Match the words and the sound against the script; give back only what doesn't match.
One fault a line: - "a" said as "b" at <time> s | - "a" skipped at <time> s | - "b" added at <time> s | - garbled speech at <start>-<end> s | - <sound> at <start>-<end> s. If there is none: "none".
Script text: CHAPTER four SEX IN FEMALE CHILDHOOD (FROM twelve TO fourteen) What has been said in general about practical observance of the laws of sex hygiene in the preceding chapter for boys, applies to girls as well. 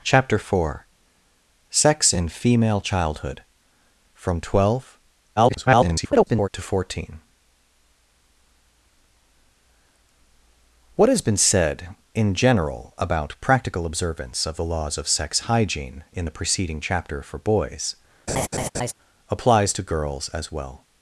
- garbled speech at 5.4-6.5 s
- laugh at 18.3-18.9 s